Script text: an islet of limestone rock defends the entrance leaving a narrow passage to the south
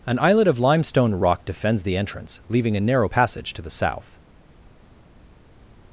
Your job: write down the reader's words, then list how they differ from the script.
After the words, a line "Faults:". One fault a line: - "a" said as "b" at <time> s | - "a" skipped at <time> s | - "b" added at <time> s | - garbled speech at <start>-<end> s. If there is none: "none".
an islet of limestone rock defends the entrance leaving a narrow passage to the south
Faults:
none